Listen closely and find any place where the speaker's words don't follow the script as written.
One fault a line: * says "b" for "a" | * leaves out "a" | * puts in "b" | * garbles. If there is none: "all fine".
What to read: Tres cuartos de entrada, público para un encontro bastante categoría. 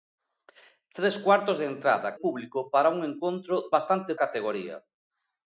all fine